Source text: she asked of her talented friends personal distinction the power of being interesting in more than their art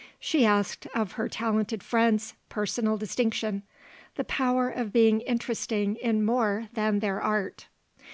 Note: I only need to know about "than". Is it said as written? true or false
true